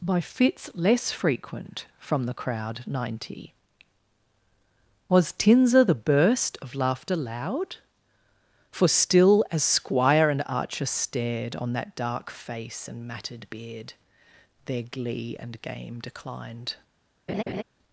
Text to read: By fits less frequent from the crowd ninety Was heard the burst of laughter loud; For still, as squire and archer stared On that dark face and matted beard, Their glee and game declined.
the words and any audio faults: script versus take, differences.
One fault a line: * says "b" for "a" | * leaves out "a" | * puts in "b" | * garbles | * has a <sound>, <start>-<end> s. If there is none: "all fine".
* says "tinza" for "heard"
* has a laugh, 17.3-17.6 s